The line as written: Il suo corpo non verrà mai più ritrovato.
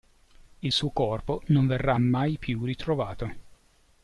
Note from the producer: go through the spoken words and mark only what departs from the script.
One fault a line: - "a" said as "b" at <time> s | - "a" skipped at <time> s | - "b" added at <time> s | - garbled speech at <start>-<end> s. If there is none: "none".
none